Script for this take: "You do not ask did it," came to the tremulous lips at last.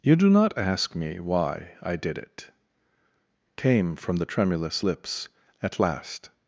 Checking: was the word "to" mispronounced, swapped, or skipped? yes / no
yes